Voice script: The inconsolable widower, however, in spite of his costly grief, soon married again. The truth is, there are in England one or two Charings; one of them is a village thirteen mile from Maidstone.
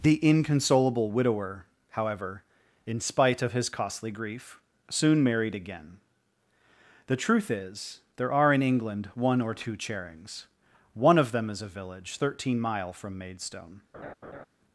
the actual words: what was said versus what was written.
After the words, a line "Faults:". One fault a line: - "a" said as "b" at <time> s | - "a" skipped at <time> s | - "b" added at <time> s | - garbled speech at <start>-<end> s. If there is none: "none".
The inconsolable widower, however, in spite of his costly grief, soon married again. The truth is, there are in England one or two Charings; one of them is a village thirteen mile from Maidstone.
Faults:
none